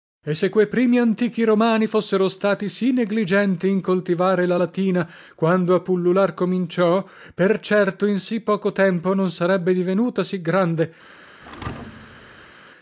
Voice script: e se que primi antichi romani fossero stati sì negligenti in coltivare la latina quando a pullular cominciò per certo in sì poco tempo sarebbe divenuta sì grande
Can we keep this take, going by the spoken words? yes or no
no